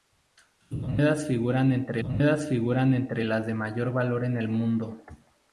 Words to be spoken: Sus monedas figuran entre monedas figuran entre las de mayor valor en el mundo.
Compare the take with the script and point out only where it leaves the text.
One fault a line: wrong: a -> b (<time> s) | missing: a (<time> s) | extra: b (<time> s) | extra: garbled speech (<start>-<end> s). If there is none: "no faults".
no faults